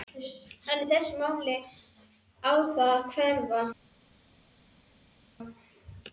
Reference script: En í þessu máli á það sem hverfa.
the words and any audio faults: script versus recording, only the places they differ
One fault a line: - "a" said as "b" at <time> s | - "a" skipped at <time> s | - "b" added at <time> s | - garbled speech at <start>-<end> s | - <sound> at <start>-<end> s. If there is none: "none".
- "sem" said as "að" at 2.9 s